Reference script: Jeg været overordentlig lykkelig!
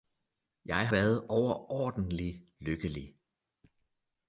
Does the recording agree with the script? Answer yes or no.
yes